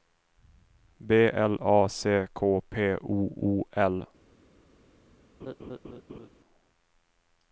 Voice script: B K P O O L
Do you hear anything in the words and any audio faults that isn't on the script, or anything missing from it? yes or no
yes